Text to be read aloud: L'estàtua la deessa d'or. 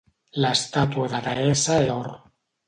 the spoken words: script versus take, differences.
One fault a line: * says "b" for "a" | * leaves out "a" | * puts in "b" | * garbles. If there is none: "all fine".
all fine